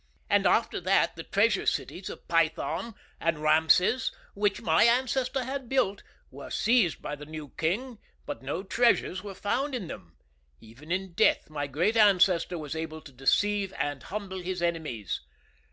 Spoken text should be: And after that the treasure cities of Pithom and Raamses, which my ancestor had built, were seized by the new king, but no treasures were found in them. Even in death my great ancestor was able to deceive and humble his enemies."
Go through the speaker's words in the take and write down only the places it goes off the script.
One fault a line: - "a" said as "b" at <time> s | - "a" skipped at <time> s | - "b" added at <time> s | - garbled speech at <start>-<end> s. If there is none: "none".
none